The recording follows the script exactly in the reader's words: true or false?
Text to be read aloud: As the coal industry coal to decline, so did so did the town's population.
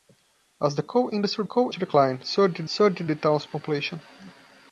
true